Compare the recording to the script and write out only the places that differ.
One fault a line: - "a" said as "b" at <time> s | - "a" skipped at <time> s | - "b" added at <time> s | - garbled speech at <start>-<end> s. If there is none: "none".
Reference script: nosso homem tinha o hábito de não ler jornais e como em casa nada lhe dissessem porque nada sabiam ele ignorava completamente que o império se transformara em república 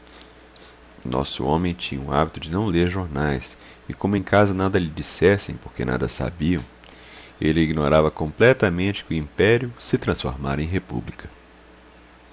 none